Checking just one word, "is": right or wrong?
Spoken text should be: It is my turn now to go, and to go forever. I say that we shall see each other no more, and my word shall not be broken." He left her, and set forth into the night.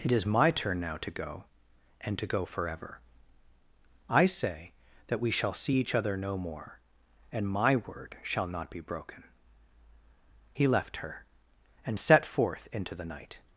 right